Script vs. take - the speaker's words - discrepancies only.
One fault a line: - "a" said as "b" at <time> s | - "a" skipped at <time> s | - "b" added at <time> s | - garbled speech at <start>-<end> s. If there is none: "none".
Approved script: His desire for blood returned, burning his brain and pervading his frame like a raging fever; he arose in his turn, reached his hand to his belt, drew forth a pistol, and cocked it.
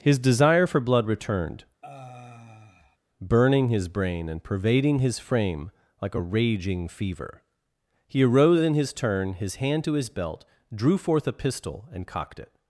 - "reached" skipped at 9.3 s